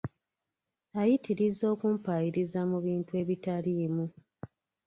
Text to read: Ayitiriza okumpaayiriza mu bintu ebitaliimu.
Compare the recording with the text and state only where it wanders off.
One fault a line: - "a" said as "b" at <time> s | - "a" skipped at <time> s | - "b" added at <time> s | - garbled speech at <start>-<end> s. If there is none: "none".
none